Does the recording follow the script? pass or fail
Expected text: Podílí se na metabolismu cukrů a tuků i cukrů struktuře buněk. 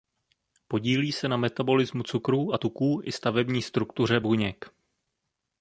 fail